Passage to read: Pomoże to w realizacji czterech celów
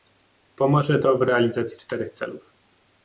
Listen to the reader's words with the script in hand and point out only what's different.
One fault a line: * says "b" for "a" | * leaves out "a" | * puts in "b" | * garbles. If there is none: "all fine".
all fine